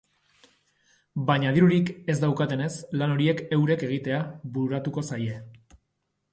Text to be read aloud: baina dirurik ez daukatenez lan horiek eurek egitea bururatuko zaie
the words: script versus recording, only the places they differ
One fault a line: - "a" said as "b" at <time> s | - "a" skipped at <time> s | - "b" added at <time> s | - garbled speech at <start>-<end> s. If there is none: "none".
none